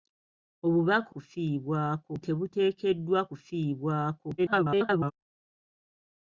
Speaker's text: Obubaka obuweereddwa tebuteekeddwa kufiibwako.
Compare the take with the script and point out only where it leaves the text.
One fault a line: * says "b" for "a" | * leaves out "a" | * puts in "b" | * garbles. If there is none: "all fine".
* says "kufiibwako" for "obuweereddwa"
* garbles